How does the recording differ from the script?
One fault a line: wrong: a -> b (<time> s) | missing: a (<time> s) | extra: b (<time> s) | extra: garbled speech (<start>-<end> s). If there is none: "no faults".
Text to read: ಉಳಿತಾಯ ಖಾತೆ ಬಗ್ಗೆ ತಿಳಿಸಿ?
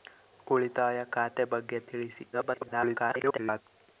extra: garbled speech (2.3-3.6 s)